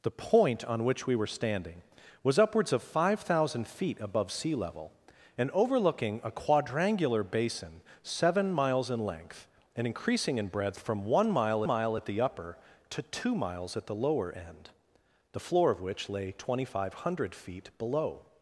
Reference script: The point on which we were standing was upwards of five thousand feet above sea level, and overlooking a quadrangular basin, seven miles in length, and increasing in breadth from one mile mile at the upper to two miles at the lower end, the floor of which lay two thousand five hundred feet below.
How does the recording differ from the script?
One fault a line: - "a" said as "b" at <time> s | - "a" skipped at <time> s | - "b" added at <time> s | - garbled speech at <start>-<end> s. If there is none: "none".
none